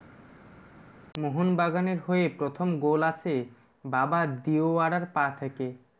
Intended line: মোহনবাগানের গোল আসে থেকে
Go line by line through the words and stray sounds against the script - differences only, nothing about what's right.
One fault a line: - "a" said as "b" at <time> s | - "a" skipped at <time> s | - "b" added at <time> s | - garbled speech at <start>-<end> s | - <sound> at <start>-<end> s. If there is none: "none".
- "হয়ে প্রথম" added at 2.1 s
- "বাবা দিওয়ারার পা" added at 3.8 s